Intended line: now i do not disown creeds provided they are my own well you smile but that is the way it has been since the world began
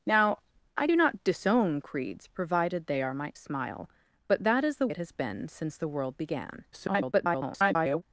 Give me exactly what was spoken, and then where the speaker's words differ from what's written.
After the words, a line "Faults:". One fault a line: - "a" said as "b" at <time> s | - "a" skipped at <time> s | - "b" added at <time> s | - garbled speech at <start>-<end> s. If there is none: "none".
now i do not disown creeds provided they are my smile but that is the it has been since the world began [garbled]
Faults:
- "own well you" skipped at 3.3 s
- "way" skipped at 4.9 s
- garbled speech at 6.7-8.0 s